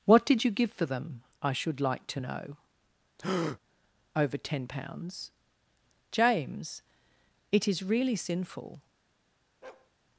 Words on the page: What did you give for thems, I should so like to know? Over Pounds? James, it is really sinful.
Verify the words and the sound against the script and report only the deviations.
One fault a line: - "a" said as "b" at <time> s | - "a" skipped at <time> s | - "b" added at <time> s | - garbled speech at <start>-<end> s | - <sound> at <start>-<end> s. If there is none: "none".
- "thems" said as "them" at 0.8 s
- "so" skipped at 1.8 s
- breath at 3.2-3.6 s
- "Ten" added at 4.4 s
- bark at 9.6-9.9 s